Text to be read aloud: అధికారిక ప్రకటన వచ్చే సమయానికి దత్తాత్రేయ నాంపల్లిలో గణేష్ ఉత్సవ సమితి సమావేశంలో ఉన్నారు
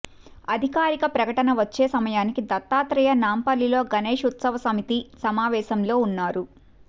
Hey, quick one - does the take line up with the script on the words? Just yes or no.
yes